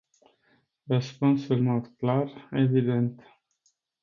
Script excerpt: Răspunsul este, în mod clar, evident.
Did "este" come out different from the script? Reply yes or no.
yes